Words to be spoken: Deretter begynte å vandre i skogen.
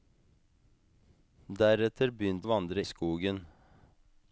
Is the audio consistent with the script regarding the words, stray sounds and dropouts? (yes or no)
yes